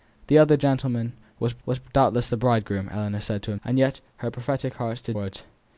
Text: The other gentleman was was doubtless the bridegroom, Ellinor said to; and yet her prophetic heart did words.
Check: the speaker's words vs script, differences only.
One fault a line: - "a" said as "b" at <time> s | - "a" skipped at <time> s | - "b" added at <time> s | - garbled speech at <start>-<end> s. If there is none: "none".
none